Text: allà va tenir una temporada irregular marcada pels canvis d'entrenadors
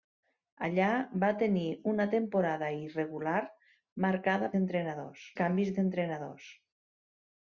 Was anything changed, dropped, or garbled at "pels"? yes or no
yes